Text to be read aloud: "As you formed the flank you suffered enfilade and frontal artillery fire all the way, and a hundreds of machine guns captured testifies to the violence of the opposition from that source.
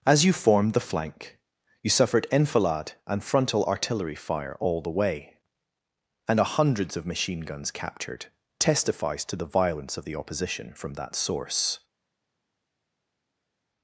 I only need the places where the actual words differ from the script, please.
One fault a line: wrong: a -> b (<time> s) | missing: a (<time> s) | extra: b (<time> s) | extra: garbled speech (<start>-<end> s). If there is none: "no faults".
no faults